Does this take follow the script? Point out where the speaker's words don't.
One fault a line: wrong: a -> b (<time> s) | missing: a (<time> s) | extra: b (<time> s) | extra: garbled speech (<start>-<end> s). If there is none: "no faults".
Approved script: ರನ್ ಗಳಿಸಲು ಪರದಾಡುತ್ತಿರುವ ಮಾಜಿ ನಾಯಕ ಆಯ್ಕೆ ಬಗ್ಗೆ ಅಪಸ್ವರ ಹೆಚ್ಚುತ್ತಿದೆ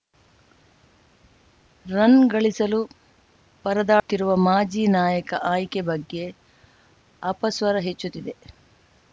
no faults